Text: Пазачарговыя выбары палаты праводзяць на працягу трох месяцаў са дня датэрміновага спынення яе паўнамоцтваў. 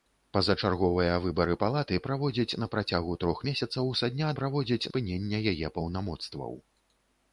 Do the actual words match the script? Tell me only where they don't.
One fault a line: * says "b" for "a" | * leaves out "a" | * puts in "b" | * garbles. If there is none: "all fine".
* says "праводзяць" for "датэрміновага"